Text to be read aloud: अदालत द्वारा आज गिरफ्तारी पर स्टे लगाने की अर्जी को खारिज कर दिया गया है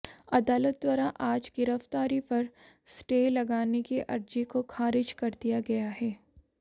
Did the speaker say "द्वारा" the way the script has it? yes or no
yes